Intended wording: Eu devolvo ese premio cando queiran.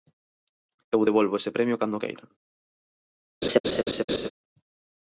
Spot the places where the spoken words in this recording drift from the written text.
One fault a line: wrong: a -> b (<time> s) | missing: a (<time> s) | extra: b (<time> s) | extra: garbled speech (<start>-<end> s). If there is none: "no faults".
no faults